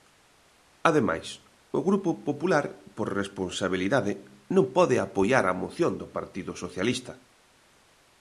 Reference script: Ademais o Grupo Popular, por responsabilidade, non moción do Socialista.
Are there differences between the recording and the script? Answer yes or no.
yes